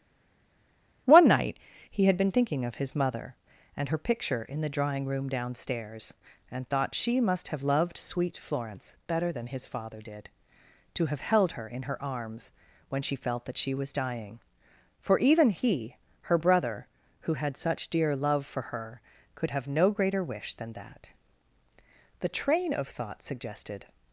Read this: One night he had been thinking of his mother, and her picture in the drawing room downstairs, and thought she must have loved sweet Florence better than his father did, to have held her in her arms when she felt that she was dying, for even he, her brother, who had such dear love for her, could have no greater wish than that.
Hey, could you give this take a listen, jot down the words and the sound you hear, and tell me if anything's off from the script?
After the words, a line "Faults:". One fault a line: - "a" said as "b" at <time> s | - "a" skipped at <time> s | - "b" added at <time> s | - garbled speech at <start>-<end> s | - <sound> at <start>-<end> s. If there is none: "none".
One night he had been thinking of his mother, and her picture in the drawing room downstairs, and thought she must have loved sweet Florence better than his father did, to have held her in her arms when she felt that she was dying, for even he, her brother, who had such dear love for her, could have no greater wish than that. The train of thought suggested
Faults:
- "The train of thought suggested" added at 22.2 s